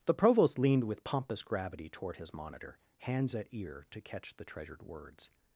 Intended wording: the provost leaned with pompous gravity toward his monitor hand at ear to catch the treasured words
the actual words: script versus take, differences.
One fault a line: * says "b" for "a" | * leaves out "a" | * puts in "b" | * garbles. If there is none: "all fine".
* says "hands" for "hand"